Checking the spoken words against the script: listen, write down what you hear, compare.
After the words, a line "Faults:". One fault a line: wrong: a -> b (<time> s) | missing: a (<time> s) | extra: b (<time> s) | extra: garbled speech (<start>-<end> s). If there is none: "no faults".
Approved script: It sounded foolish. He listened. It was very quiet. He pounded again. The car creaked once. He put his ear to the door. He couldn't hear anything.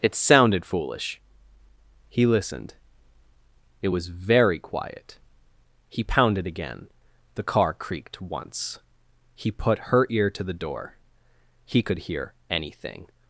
It sounded foolish. He listened. It was very quiet. He pounded again. The car creaked once. He put her ear to the door. He could hear anything.
Faults:
wrong: his -> her (9.9 s)
wrong: couldn't -> could (11.8 s)